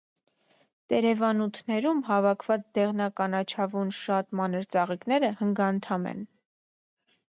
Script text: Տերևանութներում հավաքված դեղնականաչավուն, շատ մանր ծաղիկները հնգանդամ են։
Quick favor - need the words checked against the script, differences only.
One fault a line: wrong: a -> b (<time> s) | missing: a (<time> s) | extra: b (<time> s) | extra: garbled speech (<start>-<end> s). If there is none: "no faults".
no faults